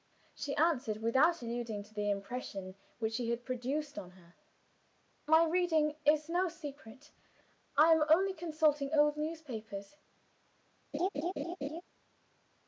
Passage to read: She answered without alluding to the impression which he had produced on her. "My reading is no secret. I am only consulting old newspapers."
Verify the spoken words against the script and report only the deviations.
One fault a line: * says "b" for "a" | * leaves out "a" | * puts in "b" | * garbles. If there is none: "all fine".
all fine